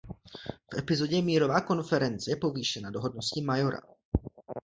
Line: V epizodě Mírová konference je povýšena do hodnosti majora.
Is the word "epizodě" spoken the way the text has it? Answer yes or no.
yes